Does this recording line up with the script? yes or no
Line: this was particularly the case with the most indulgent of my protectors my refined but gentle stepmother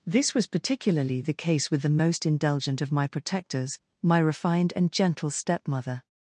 no